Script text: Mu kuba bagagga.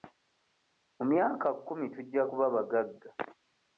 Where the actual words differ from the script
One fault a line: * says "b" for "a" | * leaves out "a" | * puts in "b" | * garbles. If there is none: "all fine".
* puts in "myaka kkumi tujja"